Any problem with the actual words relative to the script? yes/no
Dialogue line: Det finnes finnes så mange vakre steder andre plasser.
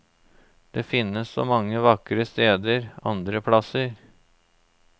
yes